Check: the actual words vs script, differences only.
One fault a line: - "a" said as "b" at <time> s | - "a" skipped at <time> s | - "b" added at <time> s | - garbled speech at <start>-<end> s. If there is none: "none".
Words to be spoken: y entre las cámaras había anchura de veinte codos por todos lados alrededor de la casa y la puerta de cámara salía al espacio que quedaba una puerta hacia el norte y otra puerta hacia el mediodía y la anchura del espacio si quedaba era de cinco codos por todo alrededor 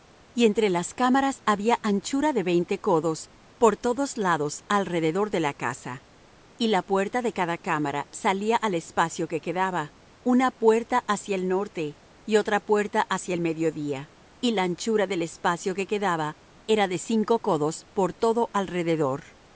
- "cada" added at 7.3 s
- "si" said as "que" at 15.7 s